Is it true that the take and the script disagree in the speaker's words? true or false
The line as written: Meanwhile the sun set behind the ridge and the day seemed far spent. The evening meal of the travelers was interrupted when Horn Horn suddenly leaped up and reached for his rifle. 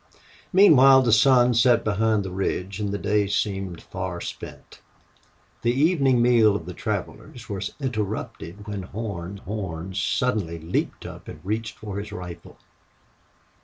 false